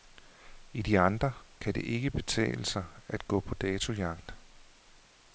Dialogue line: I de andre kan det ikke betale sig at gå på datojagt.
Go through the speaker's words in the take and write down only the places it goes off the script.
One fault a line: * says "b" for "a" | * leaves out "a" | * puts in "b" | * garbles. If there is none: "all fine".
all fine